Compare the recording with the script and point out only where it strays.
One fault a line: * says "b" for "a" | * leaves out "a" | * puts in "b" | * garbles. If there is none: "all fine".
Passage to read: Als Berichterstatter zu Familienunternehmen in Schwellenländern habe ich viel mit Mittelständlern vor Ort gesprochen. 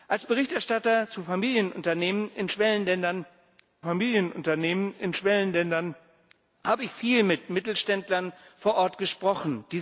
* puts in "Familienunternehmen in Schwellenländern"